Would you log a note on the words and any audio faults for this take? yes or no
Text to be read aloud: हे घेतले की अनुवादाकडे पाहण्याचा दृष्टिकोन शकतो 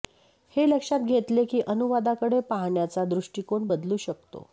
yes